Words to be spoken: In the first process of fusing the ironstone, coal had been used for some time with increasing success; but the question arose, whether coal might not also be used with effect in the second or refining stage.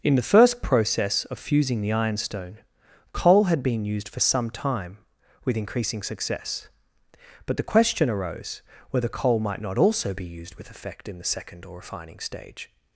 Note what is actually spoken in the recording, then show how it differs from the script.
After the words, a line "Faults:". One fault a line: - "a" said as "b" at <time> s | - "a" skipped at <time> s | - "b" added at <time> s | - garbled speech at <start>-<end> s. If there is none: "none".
In the first process of fusing the ironstone, coal had been used for some time with increasing success; but the question arose, whether coal might not also be used with effect in the second or refining stage.
Faults:
none